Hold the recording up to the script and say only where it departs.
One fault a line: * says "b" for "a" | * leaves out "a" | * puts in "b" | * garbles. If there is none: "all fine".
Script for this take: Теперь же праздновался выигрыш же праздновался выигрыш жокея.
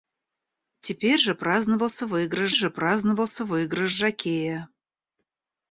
all fine